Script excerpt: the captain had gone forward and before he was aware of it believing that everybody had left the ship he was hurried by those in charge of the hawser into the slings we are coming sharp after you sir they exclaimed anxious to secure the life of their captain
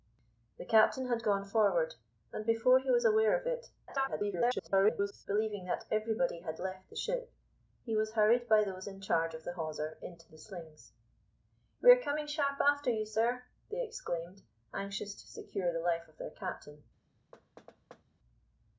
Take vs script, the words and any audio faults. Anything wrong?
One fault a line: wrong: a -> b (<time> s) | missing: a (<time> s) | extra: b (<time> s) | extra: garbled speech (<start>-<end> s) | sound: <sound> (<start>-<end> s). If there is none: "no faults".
extra: garbled speech (3.9-5.3 s)
sound: thud (17.3-18.0 s)